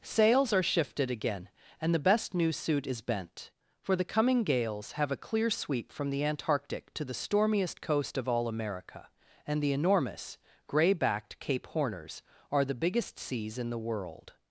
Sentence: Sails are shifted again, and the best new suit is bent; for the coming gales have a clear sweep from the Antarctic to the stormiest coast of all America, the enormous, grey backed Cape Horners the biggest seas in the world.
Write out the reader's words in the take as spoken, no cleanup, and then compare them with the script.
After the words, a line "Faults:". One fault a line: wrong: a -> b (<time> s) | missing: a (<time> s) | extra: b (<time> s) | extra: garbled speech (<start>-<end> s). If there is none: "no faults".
Sails are shifted again, and the best new suit is bent; for the coming gales have a clear sweep from the Antarctic to the stormiest coast of all America, and the enormous, grey backed Cape Horners are the biggest seas in the world.
Faults:
extra: and (9.4 s)
extra: are (12.5 s)